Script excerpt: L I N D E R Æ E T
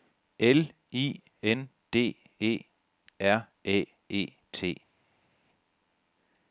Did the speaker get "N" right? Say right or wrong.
right